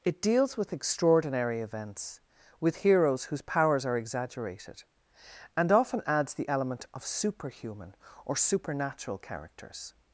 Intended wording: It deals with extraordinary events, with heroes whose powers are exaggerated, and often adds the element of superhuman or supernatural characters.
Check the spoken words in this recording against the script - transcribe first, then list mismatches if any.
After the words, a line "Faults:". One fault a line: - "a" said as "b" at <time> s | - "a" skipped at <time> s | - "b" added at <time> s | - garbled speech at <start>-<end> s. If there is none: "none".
It deals with extraordinary events, with heroes whose powers are exaggerated, and often adds the element of superhuman or supernatural characters.
Faults:
none